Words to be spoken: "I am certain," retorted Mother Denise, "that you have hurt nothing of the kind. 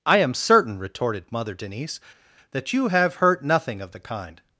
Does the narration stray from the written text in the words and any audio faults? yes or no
no